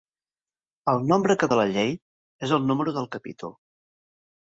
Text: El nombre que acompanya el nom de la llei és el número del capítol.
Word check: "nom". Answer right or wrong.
wrong